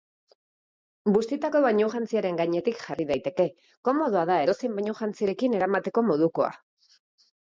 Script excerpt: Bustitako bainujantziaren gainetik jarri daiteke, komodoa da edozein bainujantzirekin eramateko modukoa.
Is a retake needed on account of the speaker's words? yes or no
no